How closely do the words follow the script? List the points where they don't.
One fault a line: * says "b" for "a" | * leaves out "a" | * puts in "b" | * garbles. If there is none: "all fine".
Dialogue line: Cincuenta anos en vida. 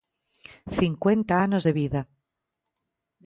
* says "de" for "en"